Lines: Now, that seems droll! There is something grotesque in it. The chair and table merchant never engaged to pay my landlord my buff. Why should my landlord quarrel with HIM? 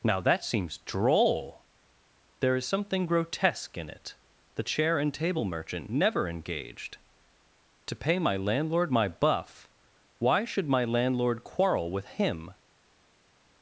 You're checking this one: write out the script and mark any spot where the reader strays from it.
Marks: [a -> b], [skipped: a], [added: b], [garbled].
Now, that seems droll! There is something grotesque in it. The chair and table merchant never engaged to pay my landlord my buff. Why should my landlord quarrel with HIM?